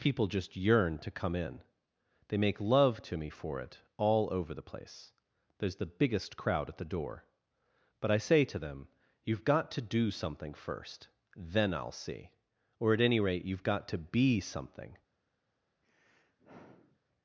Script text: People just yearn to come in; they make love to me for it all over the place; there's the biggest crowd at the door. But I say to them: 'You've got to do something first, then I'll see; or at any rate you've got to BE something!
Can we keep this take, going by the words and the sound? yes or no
no